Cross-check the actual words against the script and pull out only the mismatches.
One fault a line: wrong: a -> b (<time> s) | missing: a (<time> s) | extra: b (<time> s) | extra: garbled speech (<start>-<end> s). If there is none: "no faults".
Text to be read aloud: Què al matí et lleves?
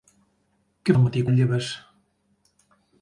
no faults